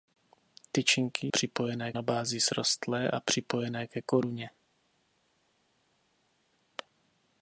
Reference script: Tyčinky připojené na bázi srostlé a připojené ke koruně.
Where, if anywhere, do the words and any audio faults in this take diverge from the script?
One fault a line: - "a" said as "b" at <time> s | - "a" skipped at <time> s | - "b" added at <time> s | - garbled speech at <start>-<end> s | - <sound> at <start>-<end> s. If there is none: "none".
none